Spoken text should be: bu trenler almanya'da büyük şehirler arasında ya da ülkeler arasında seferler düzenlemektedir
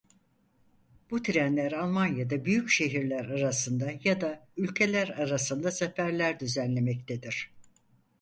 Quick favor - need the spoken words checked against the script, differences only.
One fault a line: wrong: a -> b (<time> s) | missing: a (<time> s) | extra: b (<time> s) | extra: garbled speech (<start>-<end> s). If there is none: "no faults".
no faults